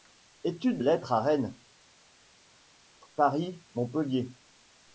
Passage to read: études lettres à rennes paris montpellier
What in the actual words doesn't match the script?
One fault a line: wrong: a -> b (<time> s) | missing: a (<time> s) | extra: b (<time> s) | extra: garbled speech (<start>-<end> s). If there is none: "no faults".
no faults